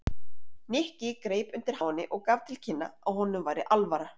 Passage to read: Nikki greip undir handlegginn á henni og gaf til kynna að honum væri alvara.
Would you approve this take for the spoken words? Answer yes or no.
no